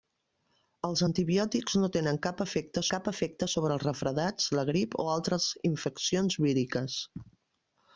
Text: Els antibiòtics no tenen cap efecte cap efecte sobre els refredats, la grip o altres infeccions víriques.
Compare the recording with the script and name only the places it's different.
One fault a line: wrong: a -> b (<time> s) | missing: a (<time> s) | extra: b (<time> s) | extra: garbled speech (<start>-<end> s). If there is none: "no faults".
no faults